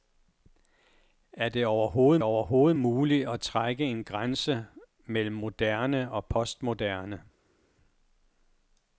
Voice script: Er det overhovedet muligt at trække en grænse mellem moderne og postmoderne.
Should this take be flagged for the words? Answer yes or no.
yes